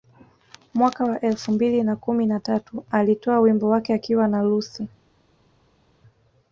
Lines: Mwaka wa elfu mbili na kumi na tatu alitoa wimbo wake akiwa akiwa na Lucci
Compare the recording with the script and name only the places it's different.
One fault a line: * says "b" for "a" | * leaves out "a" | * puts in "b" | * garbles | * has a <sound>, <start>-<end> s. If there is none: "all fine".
* leaves out "akiwa"